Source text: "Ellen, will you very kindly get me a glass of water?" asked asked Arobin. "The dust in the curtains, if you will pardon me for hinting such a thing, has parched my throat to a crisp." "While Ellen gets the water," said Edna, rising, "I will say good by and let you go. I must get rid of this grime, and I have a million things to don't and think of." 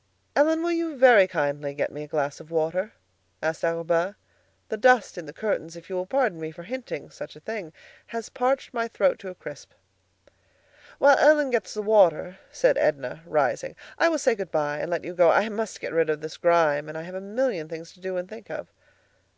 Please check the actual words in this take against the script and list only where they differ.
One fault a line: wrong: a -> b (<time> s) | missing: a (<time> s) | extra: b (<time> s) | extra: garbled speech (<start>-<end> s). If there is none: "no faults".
missing: asked (3.6 s)
wrong: don't -> do (18.0 s)